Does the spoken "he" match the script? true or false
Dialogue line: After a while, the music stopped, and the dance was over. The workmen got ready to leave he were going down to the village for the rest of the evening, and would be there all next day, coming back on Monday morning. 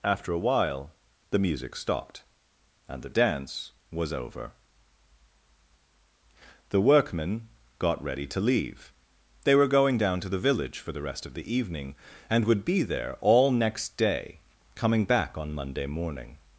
false